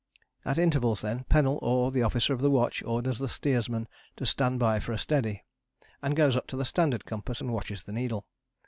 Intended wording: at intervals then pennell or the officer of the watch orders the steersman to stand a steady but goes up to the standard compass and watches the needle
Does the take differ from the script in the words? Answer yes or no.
yes